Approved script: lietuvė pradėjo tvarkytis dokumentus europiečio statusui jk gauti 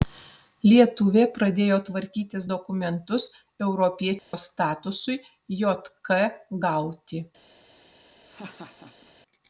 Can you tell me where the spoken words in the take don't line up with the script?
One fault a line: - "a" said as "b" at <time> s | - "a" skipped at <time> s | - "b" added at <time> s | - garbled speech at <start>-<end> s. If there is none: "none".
none